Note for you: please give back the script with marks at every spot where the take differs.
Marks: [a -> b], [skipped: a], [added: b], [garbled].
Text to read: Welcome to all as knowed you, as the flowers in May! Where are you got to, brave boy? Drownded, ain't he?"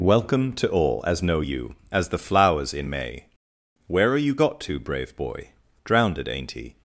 Welcome to all as [knowed -> know] you, as the flowers in May! Where are you got to, brave boy? Drownded, ain't he?"